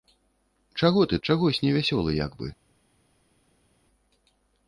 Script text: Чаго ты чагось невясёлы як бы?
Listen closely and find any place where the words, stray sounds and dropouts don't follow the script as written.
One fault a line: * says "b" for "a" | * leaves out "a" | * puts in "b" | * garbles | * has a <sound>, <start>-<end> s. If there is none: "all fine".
all fine